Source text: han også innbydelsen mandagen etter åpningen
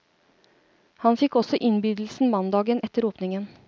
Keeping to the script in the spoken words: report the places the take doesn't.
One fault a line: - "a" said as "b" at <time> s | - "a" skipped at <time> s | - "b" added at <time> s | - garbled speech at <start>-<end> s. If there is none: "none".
- "fikk" added at 1.2 s